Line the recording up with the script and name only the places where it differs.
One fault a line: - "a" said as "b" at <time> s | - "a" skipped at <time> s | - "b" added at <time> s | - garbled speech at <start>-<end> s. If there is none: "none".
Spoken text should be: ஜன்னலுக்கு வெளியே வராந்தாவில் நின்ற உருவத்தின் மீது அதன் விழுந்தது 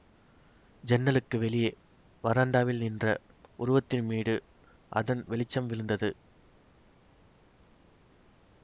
- "வெளிச்சம்" added at 5.3 s